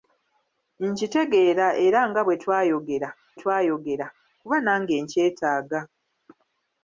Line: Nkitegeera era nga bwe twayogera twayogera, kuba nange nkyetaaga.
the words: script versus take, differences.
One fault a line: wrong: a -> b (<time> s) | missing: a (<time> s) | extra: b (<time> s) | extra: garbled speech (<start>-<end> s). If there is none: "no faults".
no faults